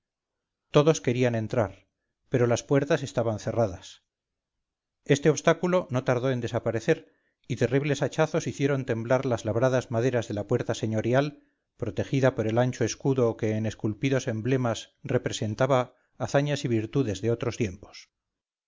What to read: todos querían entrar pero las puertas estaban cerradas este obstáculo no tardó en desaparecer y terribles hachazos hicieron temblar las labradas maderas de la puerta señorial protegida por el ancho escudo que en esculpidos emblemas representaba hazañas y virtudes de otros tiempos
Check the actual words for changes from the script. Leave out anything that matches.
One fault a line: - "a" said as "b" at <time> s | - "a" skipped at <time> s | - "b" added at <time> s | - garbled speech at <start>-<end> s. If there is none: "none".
none